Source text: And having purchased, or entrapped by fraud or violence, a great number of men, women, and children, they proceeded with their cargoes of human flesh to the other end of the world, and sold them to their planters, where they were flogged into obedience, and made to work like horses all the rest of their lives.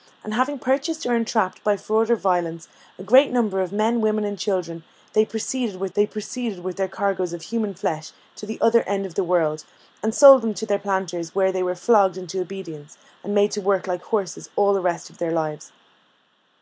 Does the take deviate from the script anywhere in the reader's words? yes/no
yes